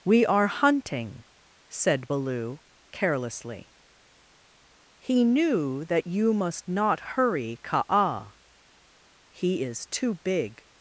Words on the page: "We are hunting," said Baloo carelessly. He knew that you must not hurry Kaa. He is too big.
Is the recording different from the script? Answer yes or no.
no